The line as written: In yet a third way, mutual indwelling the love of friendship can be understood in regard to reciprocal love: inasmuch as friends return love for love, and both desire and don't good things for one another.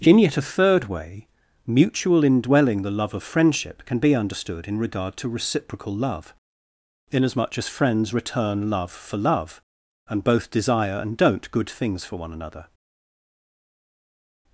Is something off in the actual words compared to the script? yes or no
no